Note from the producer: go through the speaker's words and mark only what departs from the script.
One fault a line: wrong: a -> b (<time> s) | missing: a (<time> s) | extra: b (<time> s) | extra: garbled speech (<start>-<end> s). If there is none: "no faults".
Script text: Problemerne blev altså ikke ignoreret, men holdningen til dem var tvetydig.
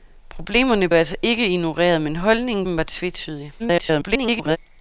missing: blev (0.9 s)
missing: til (2.7 s)
extra: garbled speech (3.6-4.6 s)